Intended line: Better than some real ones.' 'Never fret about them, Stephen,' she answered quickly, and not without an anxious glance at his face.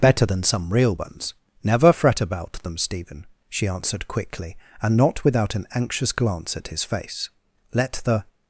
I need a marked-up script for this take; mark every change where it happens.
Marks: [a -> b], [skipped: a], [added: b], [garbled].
Better than some real ones.' 'Never fret about them, Stephen,' she answered quickly, and not without an anxious glance at his face. [added: Let the]